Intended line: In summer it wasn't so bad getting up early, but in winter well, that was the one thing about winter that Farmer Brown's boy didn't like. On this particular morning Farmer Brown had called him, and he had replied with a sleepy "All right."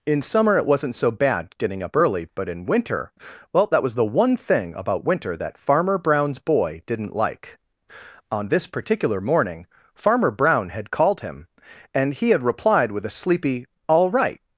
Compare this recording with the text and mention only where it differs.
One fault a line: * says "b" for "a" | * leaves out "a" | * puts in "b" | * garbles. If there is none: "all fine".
all fine